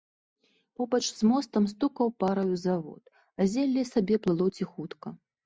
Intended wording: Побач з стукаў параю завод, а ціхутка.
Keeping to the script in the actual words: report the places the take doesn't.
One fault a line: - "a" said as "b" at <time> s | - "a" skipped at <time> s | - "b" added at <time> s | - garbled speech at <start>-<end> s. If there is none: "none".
- "мостам" added at 1.3 s
- "зелле сабе плыло" added at 3.6 s